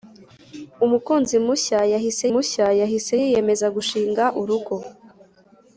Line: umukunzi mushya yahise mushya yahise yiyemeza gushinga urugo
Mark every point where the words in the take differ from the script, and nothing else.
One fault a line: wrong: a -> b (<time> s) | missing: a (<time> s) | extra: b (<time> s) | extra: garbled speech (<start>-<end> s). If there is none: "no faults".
no faults